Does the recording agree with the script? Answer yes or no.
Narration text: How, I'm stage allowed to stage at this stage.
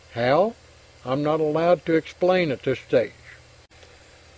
no